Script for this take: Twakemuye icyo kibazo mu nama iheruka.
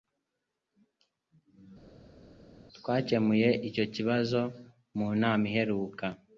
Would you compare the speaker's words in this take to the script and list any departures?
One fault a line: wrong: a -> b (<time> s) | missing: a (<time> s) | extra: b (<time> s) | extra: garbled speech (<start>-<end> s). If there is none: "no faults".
no faults